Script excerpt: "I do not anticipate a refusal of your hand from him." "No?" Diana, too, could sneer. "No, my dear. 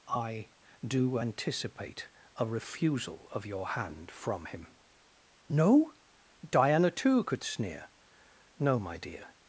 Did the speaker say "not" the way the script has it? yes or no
no